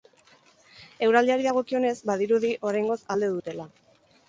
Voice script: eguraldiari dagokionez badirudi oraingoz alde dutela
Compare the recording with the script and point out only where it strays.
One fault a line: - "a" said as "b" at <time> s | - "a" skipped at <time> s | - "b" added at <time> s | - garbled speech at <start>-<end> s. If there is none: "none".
none